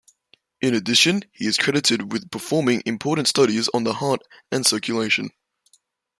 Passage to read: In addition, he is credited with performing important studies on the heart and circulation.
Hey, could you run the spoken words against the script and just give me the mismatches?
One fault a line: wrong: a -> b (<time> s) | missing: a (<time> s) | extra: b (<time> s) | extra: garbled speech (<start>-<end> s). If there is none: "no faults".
no faults